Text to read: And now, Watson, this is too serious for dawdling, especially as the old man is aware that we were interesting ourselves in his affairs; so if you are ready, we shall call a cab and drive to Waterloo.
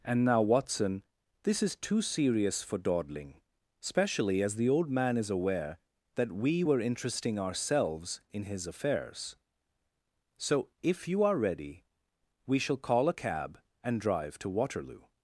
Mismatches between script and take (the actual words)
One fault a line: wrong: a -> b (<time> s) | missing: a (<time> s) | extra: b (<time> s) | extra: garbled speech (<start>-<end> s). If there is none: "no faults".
no faults